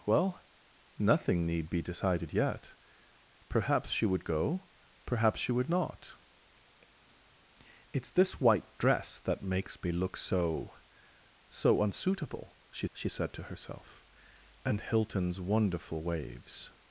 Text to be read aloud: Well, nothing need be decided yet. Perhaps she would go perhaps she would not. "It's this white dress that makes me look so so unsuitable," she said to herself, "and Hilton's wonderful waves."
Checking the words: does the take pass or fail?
fail